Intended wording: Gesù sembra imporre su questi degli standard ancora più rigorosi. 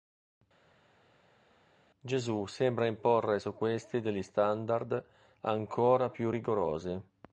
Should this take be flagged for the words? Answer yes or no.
no